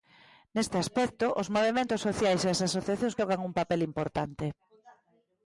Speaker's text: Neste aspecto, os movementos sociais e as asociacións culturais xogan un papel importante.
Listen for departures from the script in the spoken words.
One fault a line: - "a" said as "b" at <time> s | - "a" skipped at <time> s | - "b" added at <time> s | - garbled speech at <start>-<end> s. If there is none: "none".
- "culturais" skipped at 3.2 s